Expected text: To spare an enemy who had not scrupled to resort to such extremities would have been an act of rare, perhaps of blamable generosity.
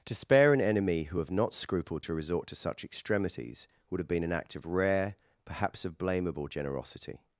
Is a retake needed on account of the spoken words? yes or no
yes